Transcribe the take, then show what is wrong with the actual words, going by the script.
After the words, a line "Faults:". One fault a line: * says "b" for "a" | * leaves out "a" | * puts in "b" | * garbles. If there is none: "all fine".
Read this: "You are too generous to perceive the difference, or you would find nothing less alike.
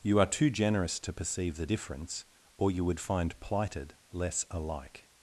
"You are too generous to perceive the difference, or you would find plighted less alike.
Faults:
* says "plighted" for "nothing"